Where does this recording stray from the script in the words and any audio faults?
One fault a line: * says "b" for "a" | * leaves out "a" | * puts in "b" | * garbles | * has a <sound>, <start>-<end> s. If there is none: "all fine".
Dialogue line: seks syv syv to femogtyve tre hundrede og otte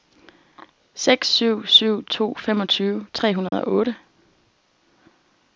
* has a dropout, 3.5-3.5 s